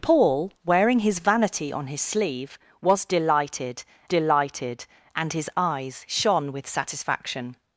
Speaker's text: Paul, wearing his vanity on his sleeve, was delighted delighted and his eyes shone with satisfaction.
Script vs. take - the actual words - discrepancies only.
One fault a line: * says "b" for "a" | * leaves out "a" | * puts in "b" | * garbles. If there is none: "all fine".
all fine